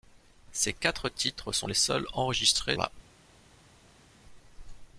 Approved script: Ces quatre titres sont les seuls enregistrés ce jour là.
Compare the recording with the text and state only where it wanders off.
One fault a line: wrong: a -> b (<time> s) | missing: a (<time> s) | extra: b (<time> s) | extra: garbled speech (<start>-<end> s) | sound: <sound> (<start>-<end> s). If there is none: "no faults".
missing: ce jour (2.8 s)